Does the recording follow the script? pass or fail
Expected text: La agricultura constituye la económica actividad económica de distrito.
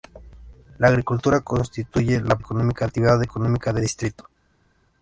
pass